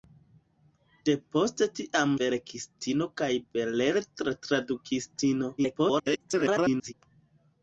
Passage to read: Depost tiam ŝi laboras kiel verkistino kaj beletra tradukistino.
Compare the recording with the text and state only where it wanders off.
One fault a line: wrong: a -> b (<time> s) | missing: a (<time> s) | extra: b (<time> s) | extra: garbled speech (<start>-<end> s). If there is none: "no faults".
missing: ŝi laboras kiel (2.1 s)
extra: garbled speech (5.6-6.9 s)